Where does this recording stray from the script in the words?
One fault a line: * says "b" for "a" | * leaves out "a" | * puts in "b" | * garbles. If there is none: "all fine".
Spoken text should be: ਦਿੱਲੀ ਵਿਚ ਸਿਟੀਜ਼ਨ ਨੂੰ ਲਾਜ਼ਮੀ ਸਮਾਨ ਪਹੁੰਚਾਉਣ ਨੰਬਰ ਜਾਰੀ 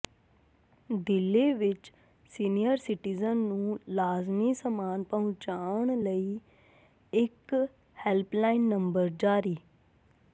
* puts in "ਸੀਨੀਅਰ"
* puts in "ਲਈ ਇਕ ਹੈਲਪਲਾਈਨ"